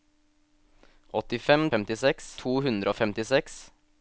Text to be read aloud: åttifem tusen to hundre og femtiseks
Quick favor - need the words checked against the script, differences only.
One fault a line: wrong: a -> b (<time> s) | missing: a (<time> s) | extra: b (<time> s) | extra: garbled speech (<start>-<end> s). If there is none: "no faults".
wrong: tusen -> femtiseks (1.7 s)